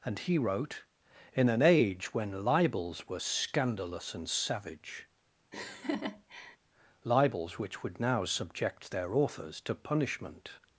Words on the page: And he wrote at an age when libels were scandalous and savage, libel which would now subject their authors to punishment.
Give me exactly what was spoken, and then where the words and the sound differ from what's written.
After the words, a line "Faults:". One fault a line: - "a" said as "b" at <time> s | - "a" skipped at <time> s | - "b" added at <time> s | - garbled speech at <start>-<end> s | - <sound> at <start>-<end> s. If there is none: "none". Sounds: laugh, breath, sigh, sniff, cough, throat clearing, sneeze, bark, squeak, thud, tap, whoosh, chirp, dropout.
And he wrote in an age when libels were scandalous and savage, libels which would now subject their authors to punishment.
Faults:
- "at" said as "in" at 1.3 s
- laugh at 5.5-6.6 s
- "libel" said as "libels" at 7.0 s